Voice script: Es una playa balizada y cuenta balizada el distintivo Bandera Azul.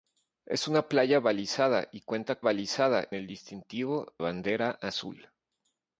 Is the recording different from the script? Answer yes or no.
no